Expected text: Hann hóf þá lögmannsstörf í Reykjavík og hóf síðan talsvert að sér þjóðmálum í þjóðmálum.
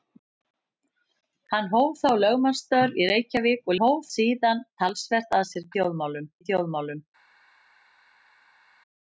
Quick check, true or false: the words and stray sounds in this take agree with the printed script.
true